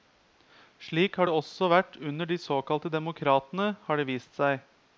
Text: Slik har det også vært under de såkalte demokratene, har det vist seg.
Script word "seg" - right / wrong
right